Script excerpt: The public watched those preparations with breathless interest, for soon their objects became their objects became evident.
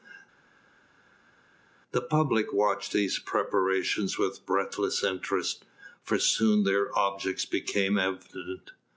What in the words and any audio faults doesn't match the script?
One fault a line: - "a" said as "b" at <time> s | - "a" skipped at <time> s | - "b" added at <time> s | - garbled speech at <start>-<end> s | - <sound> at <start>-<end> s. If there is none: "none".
- "those" said as "these" at 2.9 s
- "their objects became" skipped at 8.0 s